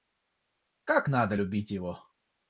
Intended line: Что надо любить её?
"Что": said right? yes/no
no